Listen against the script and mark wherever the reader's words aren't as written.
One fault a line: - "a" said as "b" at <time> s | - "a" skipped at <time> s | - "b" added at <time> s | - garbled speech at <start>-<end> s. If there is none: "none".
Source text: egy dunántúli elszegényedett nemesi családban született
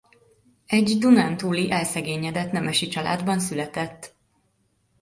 none